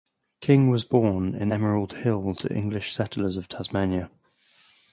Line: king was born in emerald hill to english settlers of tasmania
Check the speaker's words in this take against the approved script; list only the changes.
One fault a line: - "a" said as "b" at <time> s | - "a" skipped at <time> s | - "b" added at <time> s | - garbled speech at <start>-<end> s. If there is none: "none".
none